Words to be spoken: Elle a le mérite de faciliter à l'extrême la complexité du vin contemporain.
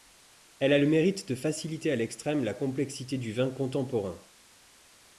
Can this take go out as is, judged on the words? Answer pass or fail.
pass